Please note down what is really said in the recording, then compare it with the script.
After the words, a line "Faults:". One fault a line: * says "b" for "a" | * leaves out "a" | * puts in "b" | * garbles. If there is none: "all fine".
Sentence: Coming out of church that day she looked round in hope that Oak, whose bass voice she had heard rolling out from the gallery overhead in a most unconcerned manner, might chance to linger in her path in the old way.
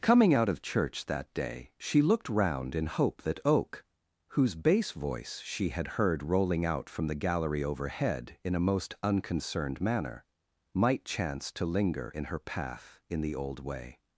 Coming out of church that day she looked round in hope that Oak, whose bass voice she had heard rolling out from the gallery overhead in a most unconcerned manner, might chance to linger in her path in the old way.
Faults:
all fine